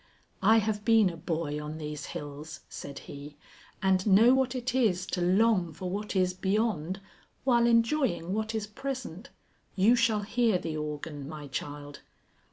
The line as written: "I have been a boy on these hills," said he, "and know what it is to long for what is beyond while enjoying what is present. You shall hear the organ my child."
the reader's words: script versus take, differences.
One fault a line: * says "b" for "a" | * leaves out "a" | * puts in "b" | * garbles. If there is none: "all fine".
all fine